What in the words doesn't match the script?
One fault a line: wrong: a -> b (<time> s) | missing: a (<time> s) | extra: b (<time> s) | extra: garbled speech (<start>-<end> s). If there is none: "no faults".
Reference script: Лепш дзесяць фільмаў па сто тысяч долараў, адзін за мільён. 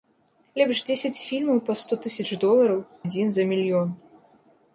no faults